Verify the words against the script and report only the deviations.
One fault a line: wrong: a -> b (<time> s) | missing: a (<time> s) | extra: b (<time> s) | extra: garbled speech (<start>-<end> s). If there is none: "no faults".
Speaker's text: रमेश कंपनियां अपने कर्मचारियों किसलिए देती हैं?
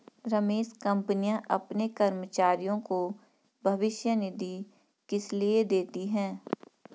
extra: को भविष्य निधि (2.8 s)